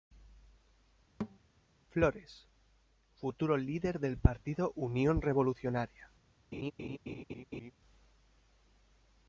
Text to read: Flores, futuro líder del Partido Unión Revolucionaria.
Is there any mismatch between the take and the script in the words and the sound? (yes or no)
yes